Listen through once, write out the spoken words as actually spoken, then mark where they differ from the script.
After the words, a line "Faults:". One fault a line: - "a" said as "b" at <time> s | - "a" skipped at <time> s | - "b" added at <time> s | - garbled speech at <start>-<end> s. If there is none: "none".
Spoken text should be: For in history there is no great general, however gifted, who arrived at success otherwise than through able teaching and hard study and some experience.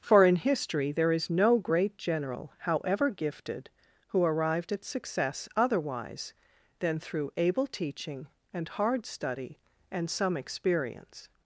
For in history there is no great general, however gifted, who arrived at success otherwise than through able teaching and hard study and some experience.
Faults:
none